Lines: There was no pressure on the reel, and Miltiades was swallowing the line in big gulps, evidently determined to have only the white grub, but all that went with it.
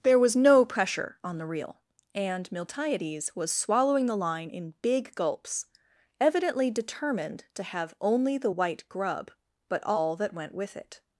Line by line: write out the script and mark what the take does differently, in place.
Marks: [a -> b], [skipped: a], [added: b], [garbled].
There was no pressure on the reel, and Miltiades was swallowing the line in big gulps, evidently determined to have only the white grub, but all that went with it.